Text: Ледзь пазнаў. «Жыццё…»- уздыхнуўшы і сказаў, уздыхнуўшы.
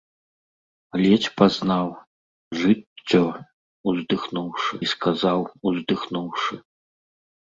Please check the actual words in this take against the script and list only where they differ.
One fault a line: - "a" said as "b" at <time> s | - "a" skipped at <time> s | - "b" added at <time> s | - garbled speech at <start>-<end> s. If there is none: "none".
none